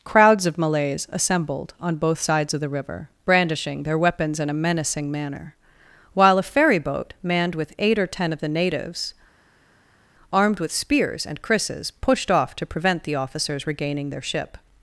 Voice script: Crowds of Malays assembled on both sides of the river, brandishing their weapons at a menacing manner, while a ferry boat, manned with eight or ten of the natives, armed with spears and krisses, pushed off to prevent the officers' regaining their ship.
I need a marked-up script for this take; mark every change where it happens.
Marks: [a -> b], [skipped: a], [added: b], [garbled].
Crowds of Malays assembled on both sides of the river, brandishing their weapons [at -> in] a menacing manner, while a ferry boat, manned with eight or ten of the natives, armed with spears and krisses, pushed off to prevent the officers' regaining their ship.